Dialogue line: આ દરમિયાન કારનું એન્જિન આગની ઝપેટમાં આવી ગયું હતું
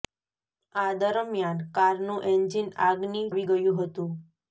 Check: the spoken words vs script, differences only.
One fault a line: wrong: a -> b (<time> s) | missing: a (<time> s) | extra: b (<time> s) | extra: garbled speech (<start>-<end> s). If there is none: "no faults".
missing: ઝપેટમાં (3.2 s)